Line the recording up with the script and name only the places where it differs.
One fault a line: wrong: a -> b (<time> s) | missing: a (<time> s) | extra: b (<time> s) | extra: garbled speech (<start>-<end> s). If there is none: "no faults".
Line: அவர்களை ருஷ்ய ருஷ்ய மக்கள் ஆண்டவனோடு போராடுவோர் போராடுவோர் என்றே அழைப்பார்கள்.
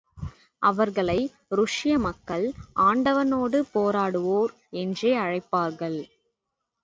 missing: ருஷ்ய (2.0 s)
missing: போராடுவோர் (4.5 s)